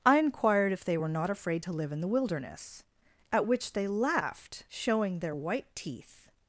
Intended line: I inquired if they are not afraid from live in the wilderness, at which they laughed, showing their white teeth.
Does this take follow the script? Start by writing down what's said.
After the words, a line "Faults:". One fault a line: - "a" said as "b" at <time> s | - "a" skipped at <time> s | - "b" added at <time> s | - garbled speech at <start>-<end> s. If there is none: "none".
I inquired if they were not afraid to live in the wilderness, at which they laughed, showing their white teeth.
Faults:
- "are" said as "were" at 1.0 s
- "from" said as "to" at 1.6 s